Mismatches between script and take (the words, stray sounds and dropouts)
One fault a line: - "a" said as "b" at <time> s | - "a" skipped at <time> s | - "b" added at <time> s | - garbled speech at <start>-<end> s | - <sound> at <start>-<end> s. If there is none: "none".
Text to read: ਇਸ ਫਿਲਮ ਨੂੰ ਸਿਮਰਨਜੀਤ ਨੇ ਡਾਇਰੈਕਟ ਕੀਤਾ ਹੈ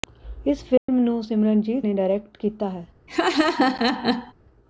- dropout at 0.8-0.9 s
- laugh at 3.1-4.3 s